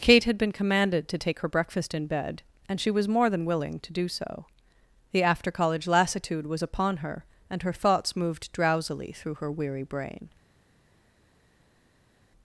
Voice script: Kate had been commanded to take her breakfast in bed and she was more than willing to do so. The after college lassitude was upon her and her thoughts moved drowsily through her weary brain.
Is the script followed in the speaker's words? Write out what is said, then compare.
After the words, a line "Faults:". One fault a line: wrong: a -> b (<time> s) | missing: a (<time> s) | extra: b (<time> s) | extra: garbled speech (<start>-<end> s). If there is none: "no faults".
Kate had been commanded to take her breakfast in bed and she was more than willing to do so. The after college lassitude was upon her and her thoughts moved drowsily through her weary brain.
Faults:
no faults